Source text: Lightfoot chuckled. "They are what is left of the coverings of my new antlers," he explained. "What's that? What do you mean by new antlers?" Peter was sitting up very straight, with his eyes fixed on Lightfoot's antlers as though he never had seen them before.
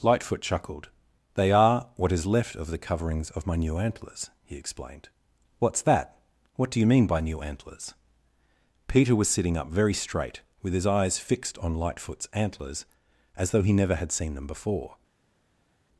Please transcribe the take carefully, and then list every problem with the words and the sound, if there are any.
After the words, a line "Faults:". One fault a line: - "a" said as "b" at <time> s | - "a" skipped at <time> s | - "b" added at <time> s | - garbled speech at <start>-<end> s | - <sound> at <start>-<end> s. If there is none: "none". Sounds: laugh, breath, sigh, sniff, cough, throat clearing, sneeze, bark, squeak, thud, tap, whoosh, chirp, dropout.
Lightfoot chuckled. "They are what is left of the coverings of my new antlers," he explained. "What's that? What do you mean by new antlers?" Peter was sitting up very straight, with his eyes fixed on Lightfoot's antlers as though he never had seen them before.
Faults:
none